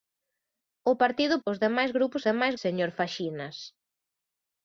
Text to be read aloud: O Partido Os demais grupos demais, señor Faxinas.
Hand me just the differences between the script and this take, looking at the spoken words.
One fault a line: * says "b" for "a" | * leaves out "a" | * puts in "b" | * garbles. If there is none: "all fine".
all fine